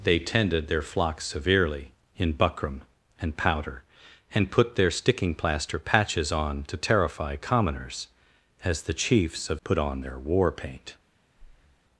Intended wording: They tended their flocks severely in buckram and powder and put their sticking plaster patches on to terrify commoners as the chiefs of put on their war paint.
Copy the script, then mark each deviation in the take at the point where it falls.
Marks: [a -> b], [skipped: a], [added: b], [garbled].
They tended their flocks severely in buckram and powder and put their sticking plaster patches on to terrify commoners as the chiefs of put on their war paint.